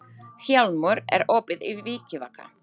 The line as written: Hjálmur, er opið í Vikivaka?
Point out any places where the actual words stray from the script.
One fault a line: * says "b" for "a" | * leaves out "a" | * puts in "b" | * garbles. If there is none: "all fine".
all fine